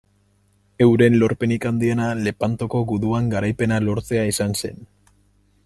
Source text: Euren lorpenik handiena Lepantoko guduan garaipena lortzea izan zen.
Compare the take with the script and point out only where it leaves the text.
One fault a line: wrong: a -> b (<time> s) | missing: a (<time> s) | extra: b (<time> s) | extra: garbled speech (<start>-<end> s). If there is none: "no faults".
no faults